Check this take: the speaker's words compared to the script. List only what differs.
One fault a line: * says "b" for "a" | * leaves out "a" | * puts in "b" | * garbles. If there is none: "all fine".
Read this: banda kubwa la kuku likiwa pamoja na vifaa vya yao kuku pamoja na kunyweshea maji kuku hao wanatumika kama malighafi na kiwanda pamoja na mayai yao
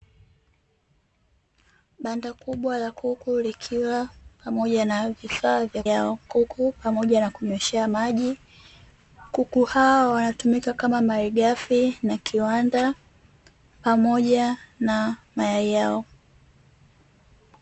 all fine